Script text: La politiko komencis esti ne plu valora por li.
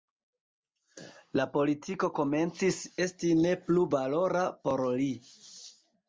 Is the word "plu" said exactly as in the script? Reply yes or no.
yes